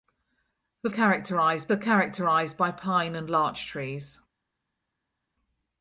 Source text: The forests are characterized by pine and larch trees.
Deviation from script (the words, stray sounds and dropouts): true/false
true